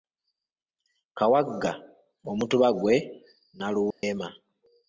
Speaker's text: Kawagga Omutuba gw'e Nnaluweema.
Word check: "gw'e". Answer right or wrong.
right